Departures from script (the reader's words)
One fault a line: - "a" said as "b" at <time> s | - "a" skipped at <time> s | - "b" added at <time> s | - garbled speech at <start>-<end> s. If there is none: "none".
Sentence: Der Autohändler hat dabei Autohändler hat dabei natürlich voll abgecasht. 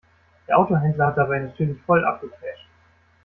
- "Autohändler hat dabei" skipped at 1.4 s